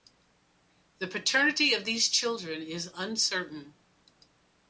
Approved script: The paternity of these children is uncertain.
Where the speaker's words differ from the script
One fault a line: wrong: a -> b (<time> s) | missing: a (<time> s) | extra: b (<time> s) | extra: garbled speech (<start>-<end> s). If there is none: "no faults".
no faults